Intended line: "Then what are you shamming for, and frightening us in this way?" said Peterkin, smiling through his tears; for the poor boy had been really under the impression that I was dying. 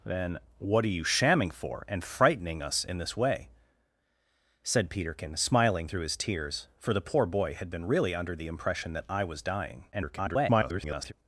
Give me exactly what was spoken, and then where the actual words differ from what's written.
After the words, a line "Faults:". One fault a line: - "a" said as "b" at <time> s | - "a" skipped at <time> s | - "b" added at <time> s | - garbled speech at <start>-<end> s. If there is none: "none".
"Then what are you shamming for, and frightening us in this way?" said Peterkin, smiling through his tears; for the poor boy had been really under the impression that I was dying. [garbled]
Faults:
- garbled speech at 9.9-11.1 s